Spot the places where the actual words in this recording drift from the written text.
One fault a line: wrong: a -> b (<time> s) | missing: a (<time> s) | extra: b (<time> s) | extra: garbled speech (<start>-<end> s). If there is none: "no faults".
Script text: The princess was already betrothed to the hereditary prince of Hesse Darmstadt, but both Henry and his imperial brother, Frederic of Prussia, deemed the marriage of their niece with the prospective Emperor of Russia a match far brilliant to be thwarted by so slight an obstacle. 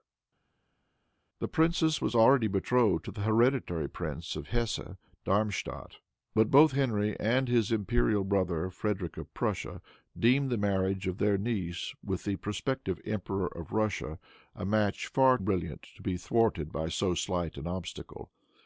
no faults